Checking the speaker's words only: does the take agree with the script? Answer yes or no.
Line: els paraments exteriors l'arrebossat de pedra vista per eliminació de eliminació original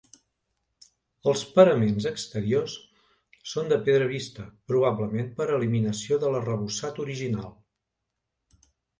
no